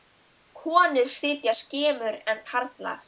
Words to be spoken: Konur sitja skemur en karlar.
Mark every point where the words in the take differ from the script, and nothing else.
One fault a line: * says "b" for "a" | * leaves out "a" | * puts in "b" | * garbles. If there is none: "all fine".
all fine